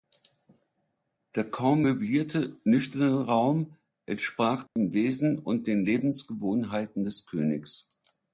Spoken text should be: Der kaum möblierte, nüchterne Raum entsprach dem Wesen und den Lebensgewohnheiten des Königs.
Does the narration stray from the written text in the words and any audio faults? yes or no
yes